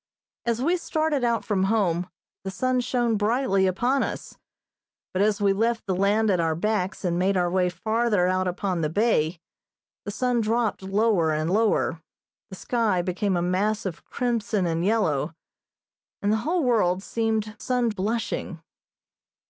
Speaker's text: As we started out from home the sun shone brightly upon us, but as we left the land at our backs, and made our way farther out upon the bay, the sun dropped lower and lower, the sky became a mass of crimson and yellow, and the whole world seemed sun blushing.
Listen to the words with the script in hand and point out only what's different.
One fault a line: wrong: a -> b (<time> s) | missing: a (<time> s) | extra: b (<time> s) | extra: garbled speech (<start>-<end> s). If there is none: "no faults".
no faults